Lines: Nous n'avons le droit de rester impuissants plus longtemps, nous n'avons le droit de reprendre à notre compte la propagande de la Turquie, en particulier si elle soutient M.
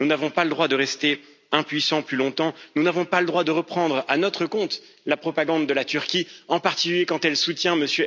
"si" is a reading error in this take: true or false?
true